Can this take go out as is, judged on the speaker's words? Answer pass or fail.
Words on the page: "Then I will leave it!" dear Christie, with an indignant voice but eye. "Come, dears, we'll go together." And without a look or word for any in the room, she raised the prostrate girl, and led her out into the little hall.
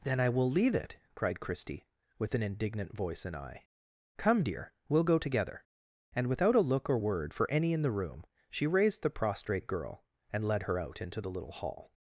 fail